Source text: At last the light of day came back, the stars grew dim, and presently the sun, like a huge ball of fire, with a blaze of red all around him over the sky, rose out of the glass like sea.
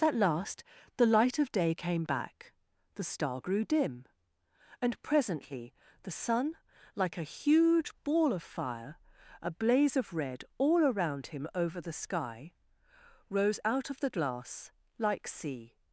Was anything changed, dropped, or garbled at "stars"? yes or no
yes